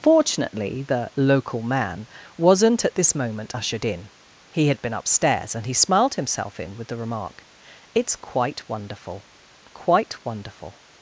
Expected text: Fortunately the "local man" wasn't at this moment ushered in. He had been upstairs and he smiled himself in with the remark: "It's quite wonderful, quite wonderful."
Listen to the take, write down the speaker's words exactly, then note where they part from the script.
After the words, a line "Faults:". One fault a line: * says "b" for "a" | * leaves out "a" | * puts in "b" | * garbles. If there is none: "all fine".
Fortunately the "local man" wasn't at this moment ushered in. He had been upstairs and he smiled himself in with the remark: "It's quite wonderful, quite wonderful."
Faults:
all fine